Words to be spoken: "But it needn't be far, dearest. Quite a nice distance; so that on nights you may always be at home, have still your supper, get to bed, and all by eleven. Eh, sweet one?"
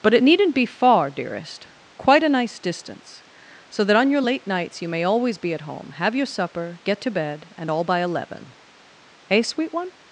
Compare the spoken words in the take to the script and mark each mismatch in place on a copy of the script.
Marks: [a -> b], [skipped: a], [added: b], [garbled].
"But it needn't be far, dearest. Quite a nice distance; so that on [added: your late] nights you may always be at home, have [skipped: still] your supper, get to bed, and all by eleven. Eh, sweet one?"